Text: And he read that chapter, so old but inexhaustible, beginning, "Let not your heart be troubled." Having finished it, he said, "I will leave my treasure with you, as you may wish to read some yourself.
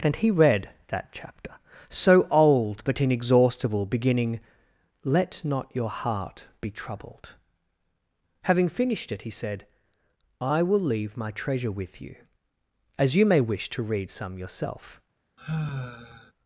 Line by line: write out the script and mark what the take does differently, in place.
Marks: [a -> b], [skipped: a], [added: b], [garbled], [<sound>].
And he read that chapter, so old but inexhaustible, beginning, "Let not your heart be troubled." Having finished it, he said, "I will leave my treasure with you, as you may wish to read some yourself. [sigh]